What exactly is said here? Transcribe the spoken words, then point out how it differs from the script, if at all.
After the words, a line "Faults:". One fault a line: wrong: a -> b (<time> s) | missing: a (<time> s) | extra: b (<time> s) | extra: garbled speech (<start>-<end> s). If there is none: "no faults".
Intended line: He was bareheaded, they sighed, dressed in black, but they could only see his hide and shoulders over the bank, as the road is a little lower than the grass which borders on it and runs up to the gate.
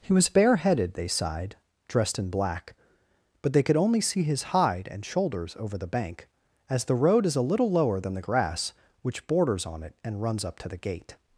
He was bareheaded, they sighed, dressed in black, but they could only see his hide and shoulders over the bank, as the road is a little lower than the grass which borders on it and runs up to the gate.
Faults:
no faults